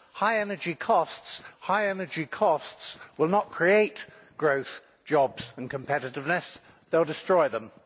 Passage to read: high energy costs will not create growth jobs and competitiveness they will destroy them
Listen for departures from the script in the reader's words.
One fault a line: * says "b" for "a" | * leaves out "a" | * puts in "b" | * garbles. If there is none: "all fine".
* puts in "high energy costs"